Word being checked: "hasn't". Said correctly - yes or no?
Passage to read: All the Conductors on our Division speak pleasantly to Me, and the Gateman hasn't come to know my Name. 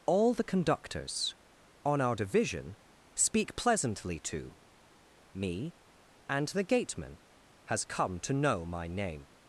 no